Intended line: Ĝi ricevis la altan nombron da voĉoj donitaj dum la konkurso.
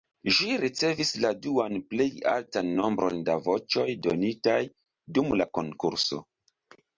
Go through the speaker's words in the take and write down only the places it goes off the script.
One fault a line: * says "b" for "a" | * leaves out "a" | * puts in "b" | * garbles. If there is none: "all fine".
* puts in "duan plej"